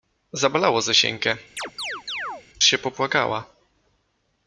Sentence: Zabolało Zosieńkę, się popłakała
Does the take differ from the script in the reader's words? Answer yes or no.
no